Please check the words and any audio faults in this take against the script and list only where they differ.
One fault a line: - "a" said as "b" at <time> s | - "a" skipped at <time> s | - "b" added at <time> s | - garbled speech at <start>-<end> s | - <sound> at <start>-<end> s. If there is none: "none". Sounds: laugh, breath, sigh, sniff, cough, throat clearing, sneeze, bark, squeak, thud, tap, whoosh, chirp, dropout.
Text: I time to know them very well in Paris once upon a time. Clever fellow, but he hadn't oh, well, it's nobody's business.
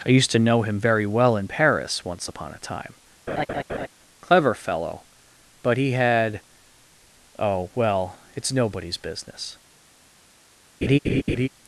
- "time" said as "used" at 0.1 s
- "them" said as "him" at 0.6 s
- laugh at 3.3-3.9 s
- "hadn't" said as "had" at 5.9 s
- laugh at 10.8-11.5 s